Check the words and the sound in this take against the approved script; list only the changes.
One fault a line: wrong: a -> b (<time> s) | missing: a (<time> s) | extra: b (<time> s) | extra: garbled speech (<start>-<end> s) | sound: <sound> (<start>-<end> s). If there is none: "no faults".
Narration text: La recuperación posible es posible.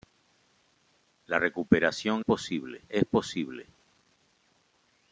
no faults